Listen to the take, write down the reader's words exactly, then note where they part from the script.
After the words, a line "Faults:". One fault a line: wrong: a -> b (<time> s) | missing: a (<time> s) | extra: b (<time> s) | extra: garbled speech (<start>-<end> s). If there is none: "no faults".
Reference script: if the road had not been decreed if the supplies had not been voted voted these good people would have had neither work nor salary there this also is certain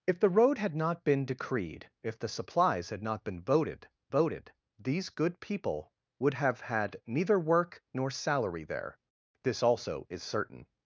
if the road had not been decreed if the supplies had not been voted voted these good people would have had neither work nor salary there this also is certain
Faults:
no faults